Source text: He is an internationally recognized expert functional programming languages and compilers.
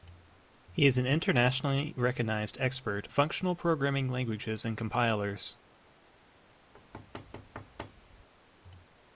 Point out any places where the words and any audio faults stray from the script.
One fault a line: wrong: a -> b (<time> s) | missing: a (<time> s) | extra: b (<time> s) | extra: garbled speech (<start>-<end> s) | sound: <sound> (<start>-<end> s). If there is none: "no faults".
sound: thud (6.7-8.3 s)